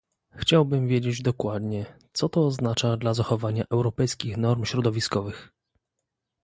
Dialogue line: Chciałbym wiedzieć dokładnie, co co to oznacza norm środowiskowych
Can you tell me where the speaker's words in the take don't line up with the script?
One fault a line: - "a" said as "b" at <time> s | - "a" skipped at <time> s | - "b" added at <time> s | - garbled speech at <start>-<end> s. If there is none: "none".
- "co" skipped at 2.3 s
- "dla zachowania europejskich" added at 3.0 s